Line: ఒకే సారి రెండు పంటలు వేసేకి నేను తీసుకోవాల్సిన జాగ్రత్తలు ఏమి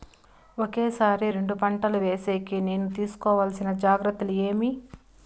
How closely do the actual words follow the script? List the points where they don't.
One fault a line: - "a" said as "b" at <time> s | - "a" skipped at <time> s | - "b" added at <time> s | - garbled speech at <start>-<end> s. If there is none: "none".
none